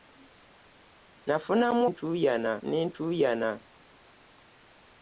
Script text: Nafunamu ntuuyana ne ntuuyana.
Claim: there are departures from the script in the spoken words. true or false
false